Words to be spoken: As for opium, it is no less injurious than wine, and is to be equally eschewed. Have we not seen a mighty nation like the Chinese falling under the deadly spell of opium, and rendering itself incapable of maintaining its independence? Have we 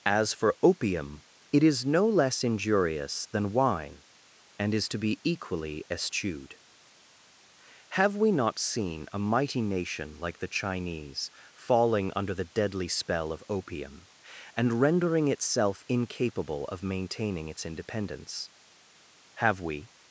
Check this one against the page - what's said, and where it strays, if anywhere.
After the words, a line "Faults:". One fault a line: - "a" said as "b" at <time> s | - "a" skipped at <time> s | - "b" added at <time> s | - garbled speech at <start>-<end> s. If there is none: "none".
As for opium, it is no less injurious than wine, and is to be equally eschewed. Have we not seen a mighty nation like the Chinese falling under the deadly spell of opium, and rendering itself incapable of maintaining its independence? Have we
Faults:
none